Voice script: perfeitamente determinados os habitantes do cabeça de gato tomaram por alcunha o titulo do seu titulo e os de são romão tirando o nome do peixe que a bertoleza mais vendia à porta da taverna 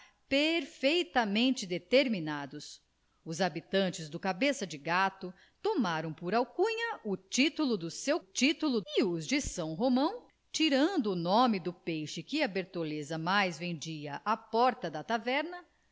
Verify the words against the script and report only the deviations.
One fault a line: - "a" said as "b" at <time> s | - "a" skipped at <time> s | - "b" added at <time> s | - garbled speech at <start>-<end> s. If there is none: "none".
none